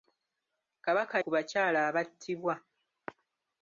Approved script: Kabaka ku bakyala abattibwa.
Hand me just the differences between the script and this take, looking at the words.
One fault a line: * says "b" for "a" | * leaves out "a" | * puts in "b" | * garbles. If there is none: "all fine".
all fine